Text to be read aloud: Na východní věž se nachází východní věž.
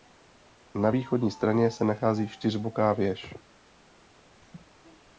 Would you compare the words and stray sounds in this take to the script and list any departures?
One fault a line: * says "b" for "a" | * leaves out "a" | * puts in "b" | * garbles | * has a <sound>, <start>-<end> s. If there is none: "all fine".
* says "straně" for "věž"
* says "čtyřboká" for "východní"
* has a laugh, 4.4-4.7 s